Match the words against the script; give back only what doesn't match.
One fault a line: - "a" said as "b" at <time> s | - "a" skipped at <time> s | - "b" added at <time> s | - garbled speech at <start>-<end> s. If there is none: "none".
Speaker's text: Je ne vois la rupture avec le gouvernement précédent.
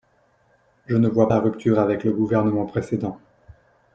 none